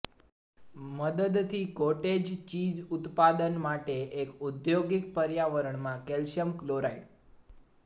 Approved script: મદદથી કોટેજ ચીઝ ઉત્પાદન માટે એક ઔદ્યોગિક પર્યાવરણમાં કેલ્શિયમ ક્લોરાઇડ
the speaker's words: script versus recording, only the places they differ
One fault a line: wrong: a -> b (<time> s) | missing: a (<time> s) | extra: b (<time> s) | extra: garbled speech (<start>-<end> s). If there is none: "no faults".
no faults